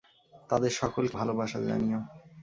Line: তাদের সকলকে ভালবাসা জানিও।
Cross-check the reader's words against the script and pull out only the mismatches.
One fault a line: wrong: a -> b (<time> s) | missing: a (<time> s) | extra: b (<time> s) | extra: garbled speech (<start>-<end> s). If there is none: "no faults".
no faults